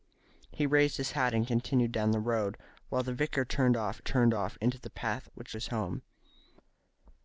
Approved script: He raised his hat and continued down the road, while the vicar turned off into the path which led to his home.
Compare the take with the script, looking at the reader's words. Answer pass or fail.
fail